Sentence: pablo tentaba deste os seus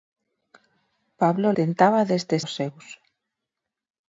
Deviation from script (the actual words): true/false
false